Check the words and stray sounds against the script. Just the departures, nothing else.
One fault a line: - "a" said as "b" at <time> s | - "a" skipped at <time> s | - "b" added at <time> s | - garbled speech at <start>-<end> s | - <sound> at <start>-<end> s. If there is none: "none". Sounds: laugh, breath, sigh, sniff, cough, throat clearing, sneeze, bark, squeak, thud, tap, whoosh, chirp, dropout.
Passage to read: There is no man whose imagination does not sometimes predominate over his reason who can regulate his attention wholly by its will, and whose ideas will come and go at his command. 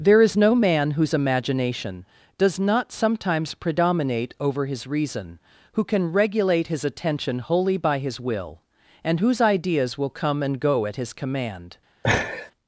- "its" said as "his" at 8.0 s
- laugh at 12.0-12.5 s